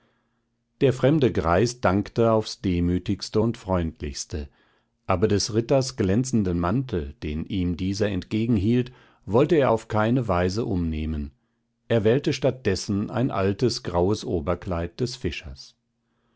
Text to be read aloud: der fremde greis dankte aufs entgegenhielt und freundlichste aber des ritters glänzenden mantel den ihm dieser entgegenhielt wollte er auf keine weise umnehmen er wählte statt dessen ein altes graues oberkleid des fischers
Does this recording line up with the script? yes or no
no